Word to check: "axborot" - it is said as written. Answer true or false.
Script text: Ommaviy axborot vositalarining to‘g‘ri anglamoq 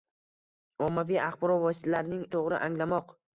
true